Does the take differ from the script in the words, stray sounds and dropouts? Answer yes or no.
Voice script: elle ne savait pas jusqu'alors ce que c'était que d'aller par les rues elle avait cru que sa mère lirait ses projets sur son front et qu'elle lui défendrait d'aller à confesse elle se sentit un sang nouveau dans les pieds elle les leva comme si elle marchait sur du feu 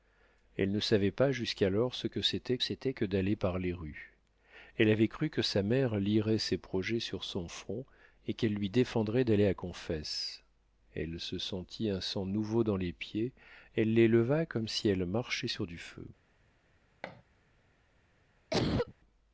yes